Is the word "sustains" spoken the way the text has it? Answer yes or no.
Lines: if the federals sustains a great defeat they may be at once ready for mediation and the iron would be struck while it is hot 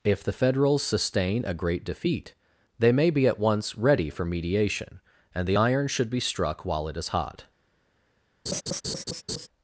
no